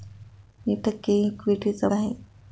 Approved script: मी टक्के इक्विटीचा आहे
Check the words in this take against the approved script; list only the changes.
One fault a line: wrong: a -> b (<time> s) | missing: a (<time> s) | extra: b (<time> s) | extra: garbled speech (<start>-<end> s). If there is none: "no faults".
no faults